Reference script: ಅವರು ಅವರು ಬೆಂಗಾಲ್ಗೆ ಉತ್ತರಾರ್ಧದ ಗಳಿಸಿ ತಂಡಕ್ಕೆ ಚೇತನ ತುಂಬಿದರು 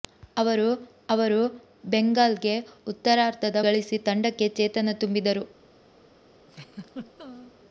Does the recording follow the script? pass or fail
pass